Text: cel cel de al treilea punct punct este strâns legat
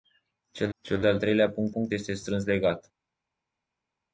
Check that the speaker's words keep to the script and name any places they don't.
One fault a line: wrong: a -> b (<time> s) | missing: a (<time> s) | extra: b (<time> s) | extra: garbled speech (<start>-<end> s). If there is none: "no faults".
no faults